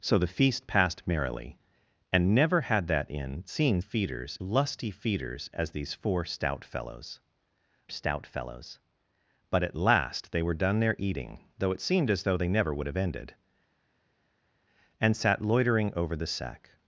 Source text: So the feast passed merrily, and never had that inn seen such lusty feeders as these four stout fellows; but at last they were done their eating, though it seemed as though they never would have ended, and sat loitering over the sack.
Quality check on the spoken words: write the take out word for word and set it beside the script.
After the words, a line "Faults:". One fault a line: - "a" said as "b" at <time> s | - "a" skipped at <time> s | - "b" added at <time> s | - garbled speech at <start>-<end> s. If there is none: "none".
So the feast passed merrily, and never had that inn seen feeders lusty feeders as these four stout fellows stout fellows; but at last they were done their eating, though it seemed as though they never would have ended, and sat loitering over the sack.
Faults:
- "such" said as "feeders" at 3.8 s
- "stout fellows" added at 7.9 s